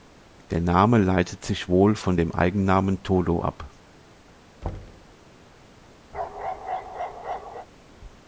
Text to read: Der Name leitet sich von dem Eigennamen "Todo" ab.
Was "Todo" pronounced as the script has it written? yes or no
yes